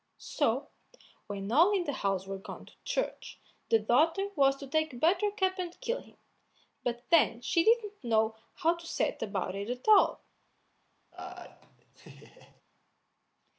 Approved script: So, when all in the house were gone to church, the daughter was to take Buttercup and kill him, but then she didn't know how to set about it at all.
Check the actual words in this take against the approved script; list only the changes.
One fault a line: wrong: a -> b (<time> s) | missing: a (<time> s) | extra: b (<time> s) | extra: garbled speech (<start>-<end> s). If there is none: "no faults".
no faults